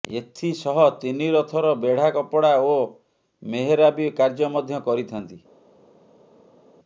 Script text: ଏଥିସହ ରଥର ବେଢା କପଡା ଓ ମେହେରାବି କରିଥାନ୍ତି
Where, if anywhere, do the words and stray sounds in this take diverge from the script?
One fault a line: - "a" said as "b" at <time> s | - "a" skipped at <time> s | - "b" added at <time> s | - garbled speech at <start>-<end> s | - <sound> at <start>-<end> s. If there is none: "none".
- "ତିନି" added at 1.0 s
- "କାର୍ଯ୍ୟ ମଧ୍ୟ" added at 4.2 s